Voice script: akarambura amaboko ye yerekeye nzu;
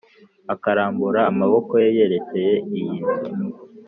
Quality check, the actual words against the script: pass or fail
fail